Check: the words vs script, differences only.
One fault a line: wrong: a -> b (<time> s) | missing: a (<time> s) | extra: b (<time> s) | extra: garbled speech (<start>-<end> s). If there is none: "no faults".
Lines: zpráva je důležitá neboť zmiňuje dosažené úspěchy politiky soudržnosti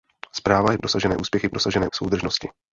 missing: důležitá neboť zmiňuje (0.8 s)
wrong: politiky -> dosažené (1.5 s)